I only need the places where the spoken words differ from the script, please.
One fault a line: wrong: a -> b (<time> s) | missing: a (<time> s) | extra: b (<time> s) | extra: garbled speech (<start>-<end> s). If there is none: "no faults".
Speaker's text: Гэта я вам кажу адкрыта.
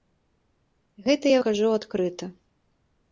missing: вам (1.4 s)